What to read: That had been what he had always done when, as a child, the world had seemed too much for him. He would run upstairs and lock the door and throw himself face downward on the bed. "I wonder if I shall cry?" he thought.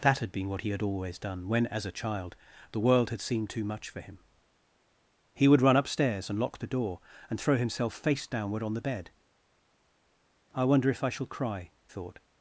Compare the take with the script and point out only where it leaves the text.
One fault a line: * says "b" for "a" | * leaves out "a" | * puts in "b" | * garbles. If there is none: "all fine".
* leaves out "he"